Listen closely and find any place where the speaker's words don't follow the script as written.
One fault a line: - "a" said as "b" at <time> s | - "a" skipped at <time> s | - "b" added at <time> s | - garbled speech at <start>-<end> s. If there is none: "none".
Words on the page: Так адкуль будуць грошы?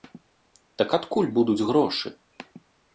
none